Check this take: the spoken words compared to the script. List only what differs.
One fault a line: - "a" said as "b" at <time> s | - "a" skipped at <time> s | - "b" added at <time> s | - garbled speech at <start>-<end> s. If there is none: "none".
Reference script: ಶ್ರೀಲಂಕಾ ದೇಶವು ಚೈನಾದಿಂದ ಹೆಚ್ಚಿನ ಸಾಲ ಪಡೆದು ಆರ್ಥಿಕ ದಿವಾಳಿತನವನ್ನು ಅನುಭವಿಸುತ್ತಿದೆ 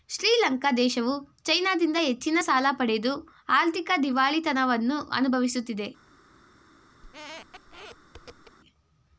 none